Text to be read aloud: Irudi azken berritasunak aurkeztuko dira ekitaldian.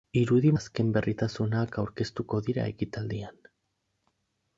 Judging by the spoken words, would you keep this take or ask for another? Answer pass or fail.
pass